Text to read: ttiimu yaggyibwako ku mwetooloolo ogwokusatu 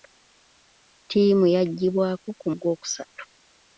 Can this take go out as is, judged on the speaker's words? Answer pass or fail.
fail